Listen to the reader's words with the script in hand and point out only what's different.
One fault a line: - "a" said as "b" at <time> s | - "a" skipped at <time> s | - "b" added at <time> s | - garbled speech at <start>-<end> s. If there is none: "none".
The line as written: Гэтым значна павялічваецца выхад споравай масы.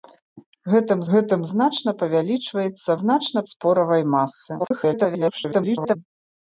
- "гэтым" added at 1.2 s
- "выхад" said as "значна" at 3.0 s
- garbled speech at 4.6-6.0 s